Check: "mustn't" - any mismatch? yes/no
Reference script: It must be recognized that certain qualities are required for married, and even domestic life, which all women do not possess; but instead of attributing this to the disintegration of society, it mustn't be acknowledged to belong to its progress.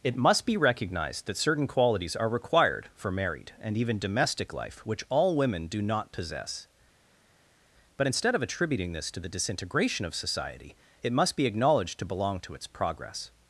yes